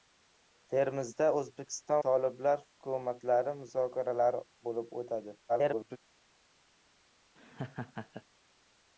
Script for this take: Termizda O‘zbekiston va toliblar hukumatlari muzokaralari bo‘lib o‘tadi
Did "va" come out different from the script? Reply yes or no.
yes